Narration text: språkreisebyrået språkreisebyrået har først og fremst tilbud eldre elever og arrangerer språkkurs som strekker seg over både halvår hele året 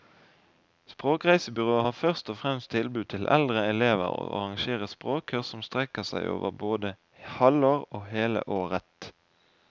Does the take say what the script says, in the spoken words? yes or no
no